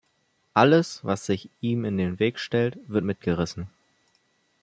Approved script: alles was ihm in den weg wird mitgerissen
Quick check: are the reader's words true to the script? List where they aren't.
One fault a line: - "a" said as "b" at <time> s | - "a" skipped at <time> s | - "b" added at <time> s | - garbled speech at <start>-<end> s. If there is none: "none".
- "sich" added at 1.2 s
- "stellt" added at 2.4 s